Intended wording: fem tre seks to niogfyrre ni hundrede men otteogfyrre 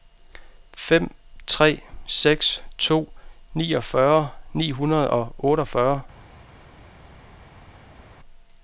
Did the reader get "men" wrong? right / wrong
wrong